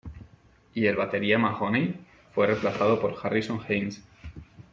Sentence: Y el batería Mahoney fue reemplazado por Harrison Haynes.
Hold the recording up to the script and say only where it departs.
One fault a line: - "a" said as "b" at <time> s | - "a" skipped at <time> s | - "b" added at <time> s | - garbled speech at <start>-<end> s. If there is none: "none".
none